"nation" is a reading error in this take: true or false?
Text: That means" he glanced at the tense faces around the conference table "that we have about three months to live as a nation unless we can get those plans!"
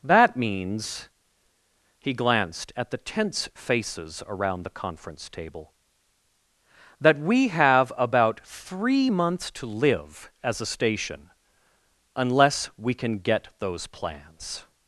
true